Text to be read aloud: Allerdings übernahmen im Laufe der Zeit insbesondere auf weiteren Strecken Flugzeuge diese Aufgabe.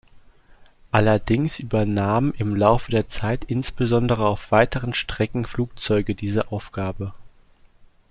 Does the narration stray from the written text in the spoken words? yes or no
no